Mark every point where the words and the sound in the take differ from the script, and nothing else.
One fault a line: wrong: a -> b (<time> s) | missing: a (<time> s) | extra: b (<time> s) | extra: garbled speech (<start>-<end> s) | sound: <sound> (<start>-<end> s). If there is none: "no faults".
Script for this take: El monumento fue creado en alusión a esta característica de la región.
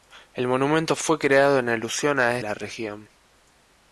missing: esta característica de (2.4 s)